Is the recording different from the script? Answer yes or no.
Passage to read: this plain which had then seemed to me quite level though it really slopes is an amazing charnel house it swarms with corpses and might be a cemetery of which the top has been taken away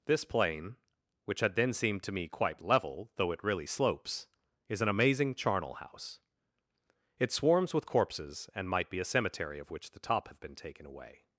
yes